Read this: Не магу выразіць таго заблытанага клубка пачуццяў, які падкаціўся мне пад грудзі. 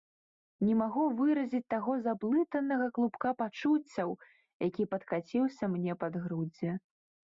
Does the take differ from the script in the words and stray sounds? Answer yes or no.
no